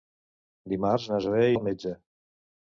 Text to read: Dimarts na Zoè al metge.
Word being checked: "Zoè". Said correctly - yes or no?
yes